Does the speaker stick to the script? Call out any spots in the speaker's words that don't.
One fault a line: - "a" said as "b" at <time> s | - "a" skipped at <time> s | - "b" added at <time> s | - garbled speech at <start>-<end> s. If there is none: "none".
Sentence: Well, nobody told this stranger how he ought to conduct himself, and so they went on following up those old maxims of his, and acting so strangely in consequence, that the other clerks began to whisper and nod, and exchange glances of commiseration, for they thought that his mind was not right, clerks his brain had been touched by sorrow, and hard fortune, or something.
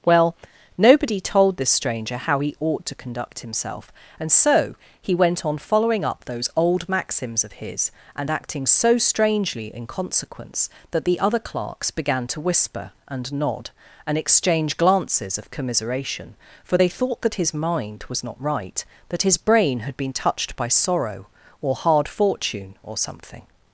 - "they" said as "he" at 5.0 s
- "clerks" said as "that" at 19.1 s
- "and" said as "or" at 21.6 s